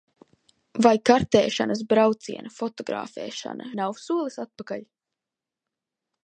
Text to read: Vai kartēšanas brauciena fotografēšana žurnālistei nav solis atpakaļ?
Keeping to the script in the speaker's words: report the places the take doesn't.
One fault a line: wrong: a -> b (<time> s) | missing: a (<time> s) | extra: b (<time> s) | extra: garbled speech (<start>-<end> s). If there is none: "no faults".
missing: žurnālistei (3.7 s)